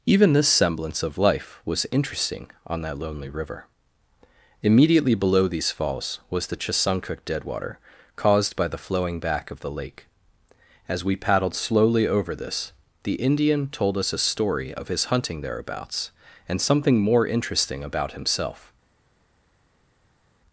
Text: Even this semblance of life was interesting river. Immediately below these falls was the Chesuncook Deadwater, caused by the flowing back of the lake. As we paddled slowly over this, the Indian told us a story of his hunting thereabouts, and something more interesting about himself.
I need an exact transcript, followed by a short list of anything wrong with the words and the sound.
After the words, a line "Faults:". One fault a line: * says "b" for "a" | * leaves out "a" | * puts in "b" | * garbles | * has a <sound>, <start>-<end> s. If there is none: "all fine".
Even this semblance of life was interesting on that lonely river. Immediately below these falls was the Chesuncook Deadwater, caused by the flowing back of the lake. As we paddled slowly over this, the Indian told us a story of his hunting thereabouts, and something more interesting about himself.
Faults:
* puts in "on that lonely"